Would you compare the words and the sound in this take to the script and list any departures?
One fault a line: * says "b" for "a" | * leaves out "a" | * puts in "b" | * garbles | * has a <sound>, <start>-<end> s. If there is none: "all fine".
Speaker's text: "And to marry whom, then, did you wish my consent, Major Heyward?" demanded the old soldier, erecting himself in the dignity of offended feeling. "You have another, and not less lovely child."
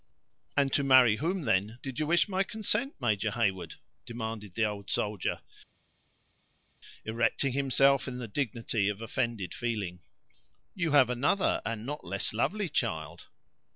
all fine